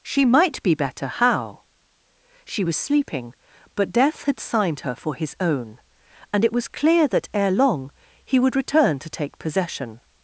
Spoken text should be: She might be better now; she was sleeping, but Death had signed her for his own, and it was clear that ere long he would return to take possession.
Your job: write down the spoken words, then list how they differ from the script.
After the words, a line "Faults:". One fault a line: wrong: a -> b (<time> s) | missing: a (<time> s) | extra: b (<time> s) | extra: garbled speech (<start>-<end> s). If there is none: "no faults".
She might be better how; she was sleeping, but Death had signed her for his own, and it was clear that ere long he would return to take possession.
Faults:
wrong: now -> how (1.1 s)